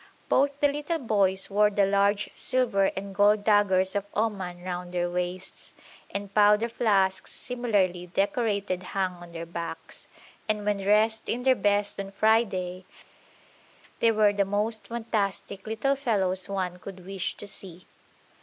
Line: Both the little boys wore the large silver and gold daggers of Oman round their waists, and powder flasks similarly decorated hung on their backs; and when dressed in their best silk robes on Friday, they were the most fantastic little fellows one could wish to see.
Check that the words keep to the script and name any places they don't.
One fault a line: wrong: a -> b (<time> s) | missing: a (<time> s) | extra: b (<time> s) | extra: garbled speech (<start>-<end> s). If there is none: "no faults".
missing: silk robes (12.0 s)